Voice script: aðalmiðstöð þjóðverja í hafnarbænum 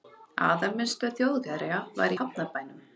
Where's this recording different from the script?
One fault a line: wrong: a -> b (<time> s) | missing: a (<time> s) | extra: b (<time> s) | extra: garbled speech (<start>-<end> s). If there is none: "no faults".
extra: var (2.0 s)